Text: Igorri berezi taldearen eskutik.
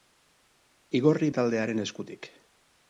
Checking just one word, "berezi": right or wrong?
wrong